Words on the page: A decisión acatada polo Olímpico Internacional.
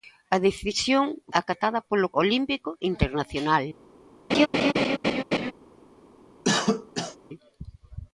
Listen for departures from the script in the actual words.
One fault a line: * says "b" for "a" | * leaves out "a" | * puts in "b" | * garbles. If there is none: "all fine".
all fine